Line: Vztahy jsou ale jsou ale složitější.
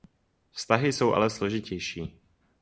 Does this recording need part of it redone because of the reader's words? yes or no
yes